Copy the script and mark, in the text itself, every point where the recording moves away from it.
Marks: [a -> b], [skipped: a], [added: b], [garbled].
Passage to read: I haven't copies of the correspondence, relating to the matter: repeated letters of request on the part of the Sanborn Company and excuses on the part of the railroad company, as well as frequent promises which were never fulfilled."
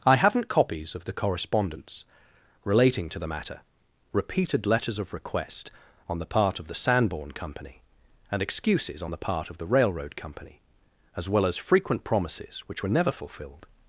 I haven't copies of the correspondence, relating to the matter: repeated letters of request on the part of the Sanborn Company and excuses on the part of the railroad company, as well as frequent promises which were never fulfilled."